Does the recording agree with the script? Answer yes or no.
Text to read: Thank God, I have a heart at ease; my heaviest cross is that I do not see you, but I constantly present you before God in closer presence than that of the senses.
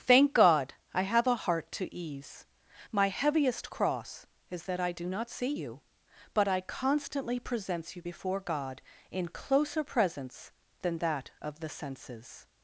no